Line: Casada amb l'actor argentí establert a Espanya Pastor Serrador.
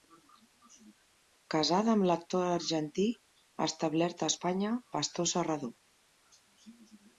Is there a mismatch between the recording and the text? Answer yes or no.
no